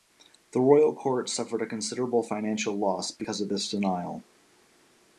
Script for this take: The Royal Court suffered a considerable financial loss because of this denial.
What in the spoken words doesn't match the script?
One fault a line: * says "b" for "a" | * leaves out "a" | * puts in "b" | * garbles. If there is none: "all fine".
all fine